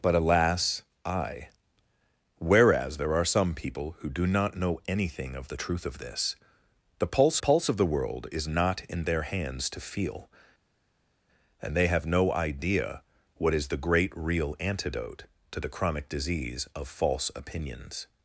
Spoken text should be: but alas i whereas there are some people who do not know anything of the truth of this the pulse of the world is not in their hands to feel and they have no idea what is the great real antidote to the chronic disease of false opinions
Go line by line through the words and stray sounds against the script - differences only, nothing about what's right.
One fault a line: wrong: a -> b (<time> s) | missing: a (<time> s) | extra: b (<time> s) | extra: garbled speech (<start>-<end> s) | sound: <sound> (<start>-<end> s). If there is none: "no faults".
extra: pulse (7.4 s)